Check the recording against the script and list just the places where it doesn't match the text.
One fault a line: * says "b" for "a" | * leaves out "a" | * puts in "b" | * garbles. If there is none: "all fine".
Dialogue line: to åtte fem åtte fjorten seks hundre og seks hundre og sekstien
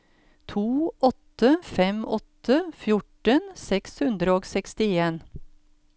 * leaves out "seks hundre og"